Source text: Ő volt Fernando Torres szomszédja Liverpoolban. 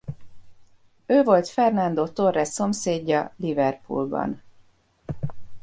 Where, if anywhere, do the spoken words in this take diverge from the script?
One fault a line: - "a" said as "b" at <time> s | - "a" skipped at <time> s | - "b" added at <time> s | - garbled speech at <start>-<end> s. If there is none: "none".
none